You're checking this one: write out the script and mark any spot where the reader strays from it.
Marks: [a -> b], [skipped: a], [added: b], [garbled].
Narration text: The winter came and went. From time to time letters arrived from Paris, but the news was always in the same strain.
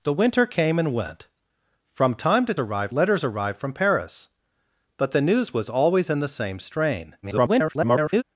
The winter came and went. From time to [time -> arrived] letters arrived from Paris, but the news was always in the same strain. [garbled]